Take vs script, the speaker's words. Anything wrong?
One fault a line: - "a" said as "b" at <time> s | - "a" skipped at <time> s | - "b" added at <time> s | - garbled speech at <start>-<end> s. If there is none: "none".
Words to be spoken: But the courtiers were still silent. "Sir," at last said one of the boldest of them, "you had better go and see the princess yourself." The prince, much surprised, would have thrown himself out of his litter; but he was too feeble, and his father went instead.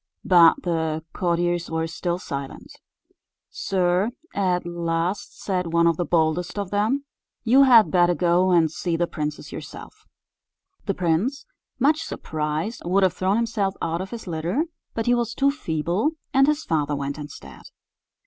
none